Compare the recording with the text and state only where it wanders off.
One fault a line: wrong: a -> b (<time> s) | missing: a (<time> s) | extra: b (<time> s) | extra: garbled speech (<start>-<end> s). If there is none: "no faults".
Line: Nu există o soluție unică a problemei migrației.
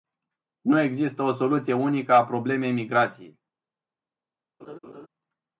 no faults